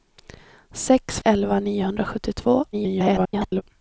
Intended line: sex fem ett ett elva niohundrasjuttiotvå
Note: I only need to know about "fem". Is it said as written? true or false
false